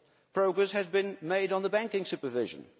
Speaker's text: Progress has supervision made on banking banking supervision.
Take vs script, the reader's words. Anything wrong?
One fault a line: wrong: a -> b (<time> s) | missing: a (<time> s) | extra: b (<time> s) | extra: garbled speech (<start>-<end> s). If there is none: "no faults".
wrong: supervision -> been (0.9 s)
missing: banking (2.0 s)